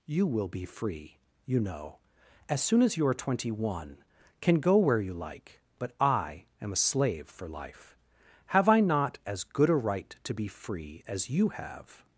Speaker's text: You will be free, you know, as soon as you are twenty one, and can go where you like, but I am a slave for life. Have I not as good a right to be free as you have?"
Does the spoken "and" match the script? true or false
false